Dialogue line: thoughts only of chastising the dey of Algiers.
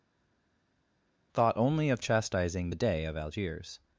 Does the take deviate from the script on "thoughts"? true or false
true